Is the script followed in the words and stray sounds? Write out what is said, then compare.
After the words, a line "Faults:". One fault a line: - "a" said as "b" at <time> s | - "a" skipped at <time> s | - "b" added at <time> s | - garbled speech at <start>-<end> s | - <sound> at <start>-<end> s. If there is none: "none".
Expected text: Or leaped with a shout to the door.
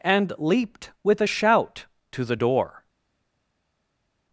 And leaped with a shout to the door.
Faults:
- "Or" said as "And" at 0.0 s